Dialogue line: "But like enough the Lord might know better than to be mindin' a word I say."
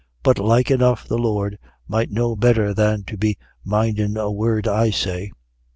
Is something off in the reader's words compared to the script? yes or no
no